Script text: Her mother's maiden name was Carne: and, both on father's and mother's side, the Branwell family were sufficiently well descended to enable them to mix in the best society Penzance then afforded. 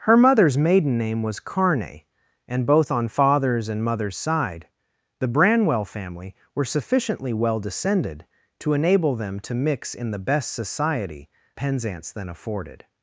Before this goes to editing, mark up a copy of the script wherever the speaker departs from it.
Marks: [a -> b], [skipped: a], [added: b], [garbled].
Her mother's maiden name was Carne: and, both on father's and mother's side, the Branwell family were sufficiently well descended to enable them to mix in the best society Penzance then afforded.